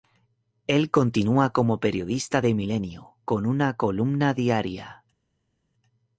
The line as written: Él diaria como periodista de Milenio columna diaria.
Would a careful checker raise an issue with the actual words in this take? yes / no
yes